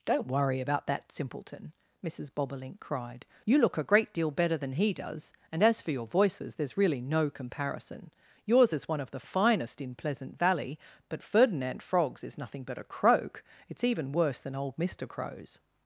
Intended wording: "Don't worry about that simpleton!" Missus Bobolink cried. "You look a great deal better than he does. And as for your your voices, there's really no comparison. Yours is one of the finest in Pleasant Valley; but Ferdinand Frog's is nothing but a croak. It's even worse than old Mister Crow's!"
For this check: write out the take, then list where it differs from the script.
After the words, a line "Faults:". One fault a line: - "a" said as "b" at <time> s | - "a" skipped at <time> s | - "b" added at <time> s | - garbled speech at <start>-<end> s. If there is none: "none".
"Don't worry about that simpleton!" Missus Bobolink cried. "You look a great deal better than he does. And as for your voices, there's really no comparison. Yours is one of the finest in Pleasant Valley; but Ferdinand Frog's is nothing but a croak. It's even worse than old Mister Crow's!"
Faults:
- "your" skipped at 6.1 s